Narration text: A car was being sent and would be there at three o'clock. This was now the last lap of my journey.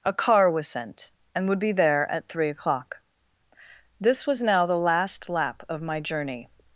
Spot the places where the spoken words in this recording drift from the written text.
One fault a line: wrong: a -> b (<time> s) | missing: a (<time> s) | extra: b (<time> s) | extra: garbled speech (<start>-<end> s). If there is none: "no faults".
missing: being (0.7 s)